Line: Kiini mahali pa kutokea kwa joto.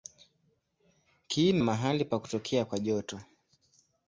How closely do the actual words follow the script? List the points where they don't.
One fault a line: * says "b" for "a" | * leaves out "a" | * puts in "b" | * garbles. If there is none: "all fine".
all fine